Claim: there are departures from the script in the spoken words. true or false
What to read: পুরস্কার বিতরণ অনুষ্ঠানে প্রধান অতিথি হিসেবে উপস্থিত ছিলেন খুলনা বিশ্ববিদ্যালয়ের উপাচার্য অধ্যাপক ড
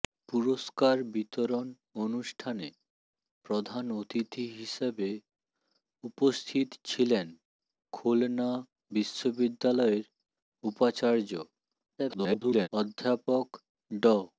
true